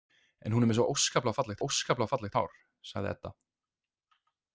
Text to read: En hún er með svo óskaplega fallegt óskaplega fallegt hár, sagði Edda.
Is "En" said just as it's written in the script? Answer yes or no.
yes